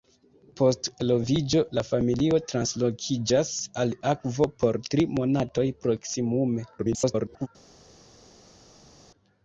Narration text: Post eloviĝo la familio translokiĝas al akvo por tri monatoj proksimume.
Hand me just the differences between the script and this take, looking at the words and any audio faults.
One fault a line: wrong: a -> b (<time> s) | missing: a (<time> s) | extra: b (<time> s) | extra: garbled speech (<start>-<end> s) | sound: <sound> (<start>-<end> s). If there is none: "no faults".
extra: garbled speech (6.8-7.5 s)